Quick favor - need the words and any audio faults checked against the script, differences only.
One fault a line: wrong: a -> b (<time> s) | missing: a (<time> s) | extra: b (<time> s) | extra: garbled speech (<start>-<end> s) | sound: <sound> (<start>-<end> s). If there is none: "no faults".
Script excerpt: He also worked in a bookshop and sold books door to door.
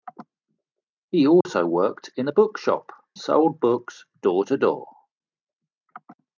sound: dropout (1.4-1.5 s)
missing: and (2.9 s)